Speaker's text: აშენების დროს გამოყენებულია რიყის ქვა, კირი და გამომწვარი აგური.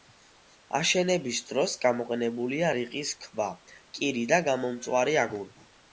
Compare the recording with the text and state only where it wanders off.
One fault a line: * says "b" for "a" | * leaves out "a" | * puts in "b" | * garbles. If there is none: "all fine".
all fine